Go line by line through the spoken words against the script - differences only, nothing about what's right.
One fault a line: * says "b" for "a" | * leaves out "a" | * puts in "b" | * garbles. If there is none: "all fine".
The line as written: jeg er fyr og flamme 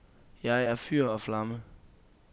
all fine